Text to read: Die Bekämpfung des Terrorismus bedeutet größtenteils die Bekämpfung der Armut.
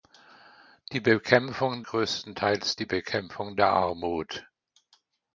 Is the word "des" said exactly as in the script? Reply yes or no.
no